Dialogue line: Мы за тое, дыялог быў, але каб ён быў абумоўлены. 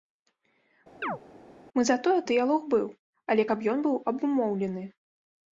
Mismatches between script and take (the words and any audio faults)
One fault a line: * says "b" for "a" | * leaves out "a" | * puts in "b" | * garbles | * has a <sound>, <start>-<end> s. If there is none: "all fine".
* has a chirp, 1.0-1.2 s